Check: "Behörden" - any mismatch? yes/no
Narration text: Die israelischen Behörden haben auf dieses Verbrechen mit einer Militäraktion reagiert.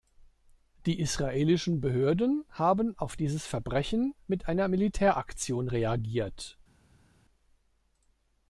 no